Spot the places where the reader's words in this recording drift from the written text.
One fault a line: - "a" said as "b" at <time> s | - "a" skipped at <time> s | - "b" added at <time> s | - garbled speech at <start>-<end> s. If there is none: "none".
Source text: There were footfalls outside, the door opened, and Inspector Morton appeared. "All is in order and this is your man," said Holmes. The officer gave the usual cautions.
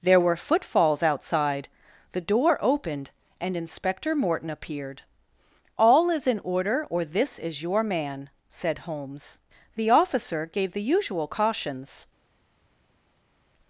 - "and" said as "or" at 6.9 s